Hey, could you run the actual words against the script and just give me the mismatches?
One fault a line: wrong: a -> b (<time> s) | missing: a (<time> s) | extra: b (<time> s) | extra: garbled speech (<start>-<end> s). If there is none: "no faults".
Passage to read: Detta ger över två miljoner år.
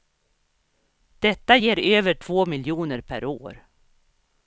extra: per (3.0 s)